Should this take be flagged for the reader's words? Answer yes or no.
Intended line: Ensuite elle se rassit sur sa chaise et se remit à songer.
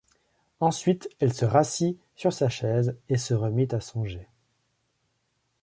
no